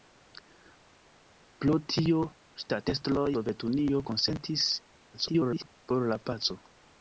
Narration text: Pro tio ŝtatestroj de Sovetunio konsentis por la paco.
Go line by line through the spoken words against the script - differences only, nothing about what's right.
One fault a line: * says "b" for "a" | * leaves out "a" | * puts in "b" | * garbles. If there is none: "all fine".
* leaves out "de"
* garbles